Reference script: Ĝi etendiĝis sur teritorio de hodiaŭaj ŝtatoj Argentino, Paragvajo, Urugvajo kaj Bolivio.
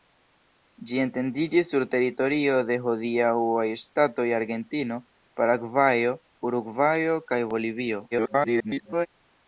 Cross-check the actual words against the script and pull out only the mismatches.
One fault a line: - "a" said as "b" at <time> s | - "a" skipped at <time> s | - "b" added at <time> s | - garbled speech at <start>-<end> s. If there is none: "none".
- garbled speech at 8.1-9.1 s